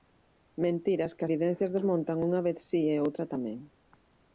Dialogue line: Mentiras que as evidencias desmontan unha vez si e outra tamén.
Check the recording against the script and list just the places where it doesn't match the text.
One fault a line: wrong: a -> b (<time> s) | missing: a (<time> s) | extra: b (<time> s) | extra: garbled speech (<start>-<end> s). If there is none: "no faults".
missing: as (1.2 s)